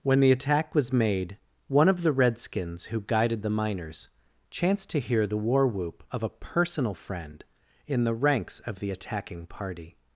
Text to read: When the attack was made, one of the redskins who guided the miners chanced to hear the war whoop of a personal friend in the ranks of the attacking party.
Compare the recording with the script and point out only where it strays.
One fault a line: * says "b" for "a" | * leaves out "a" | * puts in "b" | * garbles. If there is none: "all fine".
all fine